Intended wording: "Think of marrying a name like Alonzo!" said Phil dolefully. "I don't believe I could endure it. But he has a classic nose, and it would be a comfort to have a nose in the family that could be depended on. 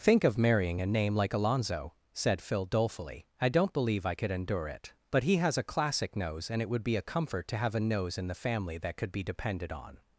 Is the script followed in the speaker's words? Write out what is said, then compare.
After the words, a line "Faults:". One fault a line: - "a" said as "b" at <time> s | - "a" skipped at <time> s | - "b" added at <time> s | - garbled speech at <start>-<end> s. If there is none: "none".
"Think of marrying a name like Alonzo!" said Phil dolefully. "I don't believe I could endure it. But he has a classic nose, and it would be a comfort to have a nose in the family that could be depended on.
Faults:
none